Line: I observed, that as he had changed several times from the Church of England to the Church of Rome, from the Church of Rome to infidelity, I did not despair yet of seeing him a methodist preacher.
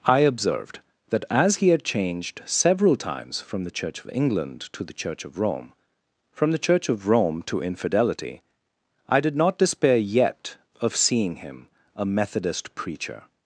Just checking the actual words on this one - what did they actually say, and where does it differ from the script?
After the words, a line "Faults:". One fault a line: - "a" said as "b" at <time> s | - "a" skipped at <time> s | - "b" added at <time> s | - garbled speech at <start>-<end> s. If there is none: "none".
I observed, that as he had changed several times from the Church of England to the Church of Rome, from the Church of Rome to infidelity, I did not despair yet of seeing him a methodist preacher.
Faults:
none